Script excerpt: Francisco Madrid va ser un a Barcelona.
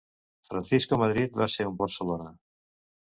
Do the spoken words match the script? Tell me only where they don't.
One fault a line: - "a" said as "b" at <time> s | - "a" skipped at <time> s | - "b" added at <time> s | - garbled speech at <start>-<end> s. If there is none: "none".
none